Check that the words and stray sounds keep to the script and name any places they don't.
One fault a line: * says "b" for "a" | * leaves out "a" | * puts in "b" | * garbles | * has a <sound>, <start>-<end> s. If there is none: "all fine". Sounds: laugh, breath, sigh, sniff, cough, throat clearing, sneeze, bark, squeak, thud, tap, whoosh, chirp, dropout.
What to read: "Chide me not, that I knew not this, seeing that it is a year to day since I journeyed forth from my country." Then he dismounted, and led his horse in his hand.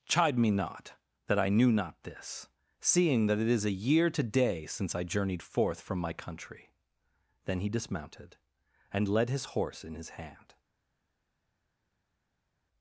all fine